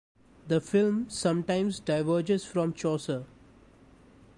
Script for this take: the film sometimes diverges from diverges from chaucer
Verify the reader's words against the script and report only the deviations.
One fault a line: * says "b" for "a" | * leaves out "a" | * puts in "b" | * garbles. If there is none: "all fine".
* leaves out "diverges from"